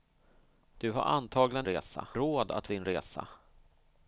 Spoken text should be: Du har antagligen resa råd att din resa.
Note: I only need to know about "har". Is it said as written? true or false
true